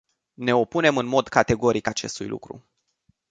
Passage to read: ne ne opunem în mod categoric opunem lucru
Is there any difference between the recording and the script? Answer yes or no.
yes